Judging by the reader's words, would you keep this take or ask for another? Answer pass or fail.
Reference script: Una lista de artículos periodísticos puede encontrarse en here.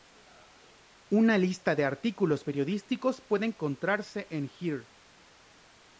pass